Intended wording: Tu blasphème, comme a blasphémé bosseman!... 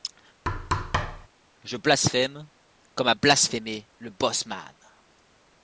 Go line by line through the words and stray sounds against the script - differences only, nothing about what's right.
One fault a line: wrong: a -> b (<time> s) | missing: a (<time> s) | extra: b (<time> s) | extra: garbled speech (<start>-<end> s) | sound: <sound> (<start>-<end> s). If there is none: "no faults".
sound: thud (0.5-1.3 s)
wrong: Tu -> Je (1.6 s)
extra: le (4.0 s)